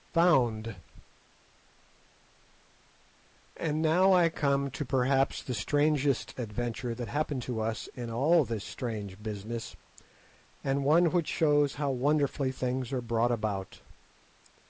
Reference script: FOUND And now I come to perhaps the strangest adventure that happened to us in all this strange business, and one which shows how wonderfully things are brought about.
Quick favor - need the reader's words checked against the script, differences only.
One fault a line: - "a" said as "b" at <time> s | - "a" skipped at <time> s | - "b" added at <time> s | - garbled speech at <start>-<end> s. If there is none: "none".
none